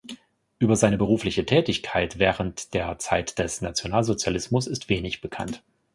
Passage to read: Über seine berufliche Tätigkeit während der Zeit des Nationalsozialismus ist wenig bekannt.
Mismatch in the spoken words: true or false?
false